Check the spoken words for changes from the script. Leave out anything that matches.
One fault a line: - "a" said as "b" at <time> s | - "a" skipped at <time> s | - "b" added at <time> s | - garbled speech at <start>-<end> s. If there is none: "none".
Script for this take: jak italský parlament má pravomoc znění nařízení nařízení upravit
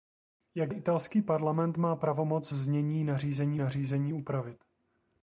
none